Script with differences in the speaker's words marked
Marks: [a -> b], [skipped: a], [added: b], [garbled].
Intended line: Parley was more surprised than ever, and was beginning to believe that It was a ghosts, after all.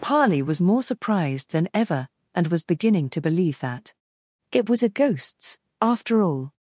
Parley was more surprised than ever, and was beginning to believe that It was a ghosts, after all.